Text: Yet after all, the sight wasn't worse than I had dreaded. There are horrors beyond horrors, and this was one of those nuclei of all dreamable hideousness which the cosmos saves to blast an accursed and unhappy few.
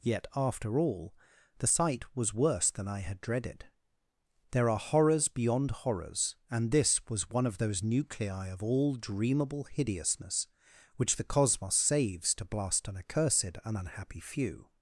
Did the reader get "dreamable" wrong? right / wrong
right